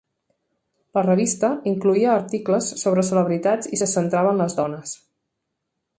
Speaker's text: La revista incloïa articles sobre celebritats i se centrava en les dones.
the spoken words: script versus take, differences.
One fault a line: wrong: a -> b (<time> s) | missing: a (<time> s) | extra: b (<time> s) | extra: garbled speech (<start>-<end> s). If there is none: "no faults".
no faults